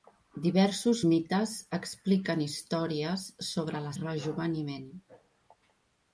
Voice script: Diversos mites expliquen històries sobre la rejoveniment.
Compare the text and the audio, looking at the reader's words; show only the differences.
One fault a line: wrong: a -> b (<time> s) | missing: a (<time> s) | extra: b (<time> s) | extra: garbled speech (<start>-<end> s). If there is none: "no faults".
no faults